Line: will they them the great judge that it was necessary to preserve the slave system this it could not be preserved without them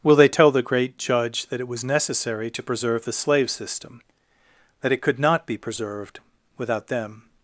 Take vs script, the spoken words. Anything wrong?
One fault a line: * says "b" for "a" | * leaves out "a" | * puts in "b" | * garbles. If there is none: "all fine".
* says "tell" for "them"
* says "that" for "this"